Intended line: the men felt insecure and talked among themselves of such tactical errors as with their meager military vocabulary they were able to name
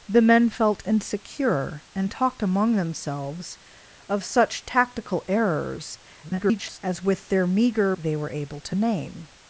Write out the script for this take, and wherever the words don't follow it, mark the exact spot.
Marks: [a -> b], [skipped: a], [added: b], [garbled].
the men felt insecure and talked among themselves of such tactical errors [garbled] as with their meager [skipped: military vocabulary] they were able to name